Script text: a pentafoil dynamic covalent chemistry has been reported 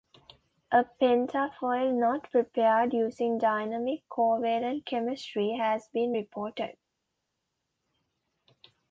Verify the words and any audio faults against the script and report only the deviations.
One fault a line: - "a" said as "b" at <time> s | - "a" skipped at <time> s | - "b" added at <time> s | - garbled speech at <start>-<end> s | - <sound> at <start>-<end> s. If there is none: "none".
- "knot prepared using" added at 1.9 s